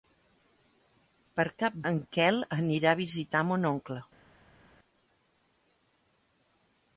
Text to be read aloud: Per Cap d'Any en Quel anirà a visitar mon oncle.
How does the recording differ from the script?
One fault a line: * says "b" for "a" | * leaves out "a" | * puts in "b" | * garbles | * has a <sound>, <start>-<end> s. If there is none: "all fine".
* leaves out "d'Any"